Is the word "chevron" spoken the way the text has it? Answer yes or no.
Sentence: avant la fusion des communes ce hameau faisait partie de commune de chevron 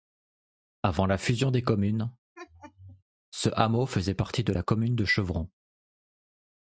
yes